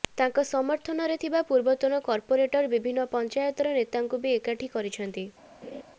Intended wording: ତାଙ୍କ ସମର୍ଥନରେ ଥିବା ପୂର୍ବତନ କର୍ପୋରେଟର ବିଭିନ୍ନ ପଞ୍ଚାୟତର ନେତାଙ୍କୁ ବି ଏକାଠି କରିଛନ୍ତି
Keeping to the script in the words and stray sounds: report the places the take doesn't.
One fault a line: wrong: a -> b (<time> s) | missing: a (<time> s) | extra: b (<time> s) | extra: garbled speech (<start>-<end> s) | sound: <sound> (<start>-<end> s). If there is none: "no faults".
sound: laugh (5.6-5.8 s)